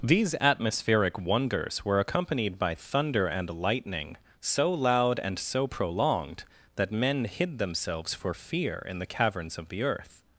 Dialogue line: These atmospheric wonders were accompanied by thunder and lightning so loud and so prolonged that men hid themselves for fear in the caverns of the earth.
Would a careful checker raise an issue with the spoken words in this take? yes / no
no